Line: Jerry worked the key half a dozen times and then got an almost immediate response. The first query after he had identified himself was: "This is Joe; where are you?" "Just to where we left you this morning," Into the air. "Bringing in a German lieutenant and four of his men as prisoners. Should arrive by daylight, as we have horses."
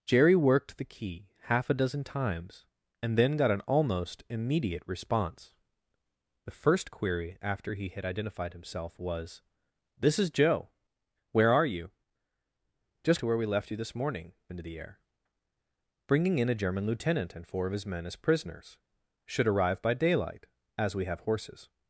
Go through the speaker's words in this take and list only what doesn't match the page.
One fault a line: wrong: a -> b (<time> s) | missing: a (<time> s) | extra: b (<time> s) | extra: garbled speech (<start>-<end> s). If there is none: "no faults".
no faults